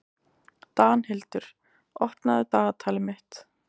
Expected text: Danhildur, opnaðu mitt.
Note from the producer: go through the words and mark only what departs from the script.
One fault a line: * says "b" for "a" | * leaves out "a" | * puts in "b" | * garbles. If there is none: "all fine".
* puts in "dagatalið"